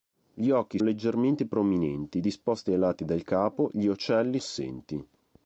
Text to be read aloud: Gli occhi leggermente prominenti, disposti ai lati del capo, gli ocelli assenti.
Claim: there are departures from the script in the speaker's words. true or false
false